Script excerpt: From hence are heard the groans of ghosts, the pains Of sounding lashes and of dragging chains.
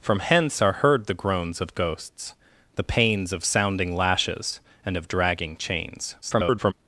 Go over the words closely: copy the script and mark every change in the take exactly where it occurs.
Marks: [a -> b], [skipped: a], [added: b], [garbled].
From hence are heard the groans of ghosts, the pains Of sounding lashes and of dragging chains. [garbled]